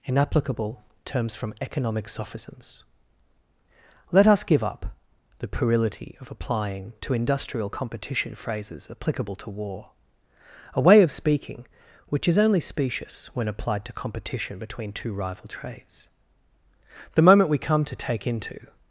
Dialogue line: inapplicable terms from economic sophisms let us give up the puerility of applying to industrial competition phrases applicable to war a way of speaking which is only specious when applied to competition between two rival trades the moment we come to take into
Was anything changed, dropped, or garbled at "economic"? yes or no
no